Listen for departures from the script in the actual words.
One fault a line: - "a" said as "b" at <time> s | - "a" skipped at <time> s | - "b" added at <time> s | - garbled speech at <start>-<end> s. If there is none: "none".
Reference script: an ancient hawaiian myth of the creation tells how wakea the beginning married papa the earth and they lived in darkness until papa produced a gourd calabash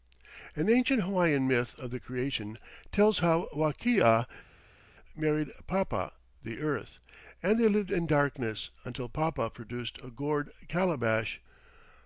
- "the beginning" skipped at 4.2 s